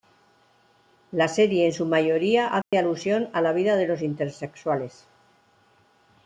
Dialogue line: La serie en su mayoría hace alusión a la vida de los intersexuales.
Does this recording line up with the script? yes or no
yes